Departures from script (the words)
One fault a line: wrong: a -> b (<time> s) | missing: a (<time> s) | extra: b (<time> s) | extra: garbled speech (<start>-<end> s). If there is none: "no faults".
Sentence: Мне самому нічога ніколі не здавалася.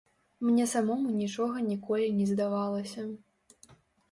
no faults